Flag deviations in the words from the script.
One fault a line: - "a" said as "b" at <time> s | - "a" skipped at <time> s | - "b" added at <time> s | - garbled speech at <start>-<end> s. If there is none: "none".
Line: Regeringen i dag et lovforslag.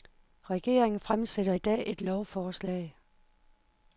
- "fremsætter" added at 1.0 s